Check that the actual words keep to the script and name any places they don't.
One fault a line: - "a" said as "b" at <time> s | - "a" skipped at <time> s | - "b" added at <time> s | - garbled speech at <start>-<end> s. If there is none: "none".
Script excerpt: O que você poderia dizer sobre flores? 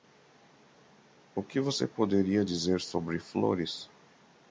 none